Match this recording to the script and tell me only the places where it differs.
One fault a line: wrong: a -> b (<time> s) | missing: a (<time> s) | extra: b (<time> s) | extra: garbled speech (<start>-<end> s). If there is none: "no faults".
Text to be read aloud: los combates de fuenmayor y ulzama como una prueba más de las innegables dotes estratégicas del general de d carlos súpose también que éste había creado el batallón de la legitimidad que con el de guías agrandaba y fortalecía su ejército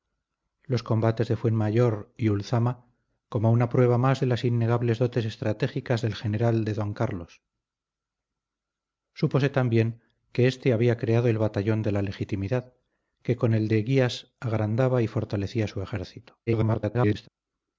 extra: garbled speech (16.5-17.3 s)